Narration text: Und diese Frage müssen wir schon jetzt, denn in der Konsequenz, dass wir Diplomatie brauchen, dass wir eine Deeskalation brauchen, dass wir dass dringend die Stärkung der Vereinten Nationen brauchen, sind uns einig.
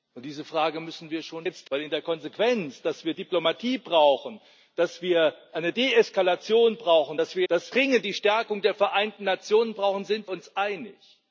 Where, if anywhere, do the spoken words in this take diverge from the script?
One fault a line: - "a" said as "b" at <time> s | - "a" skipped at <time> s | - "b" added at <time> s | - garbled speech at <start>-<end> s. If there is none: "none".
none